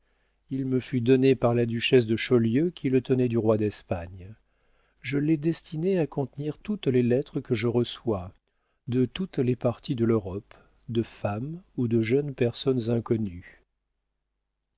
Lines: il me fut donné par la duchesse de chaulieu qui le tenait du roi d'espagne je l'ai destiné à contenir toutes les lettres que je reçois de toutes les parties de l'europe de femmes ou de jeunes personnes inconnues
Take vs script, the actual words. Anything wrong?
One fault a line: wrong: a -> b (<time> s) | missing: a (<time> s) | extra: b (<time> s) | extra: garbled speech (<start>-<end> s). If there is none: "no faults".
no faults